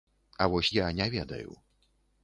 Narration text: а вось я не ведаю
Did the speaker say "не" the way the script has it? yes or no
yes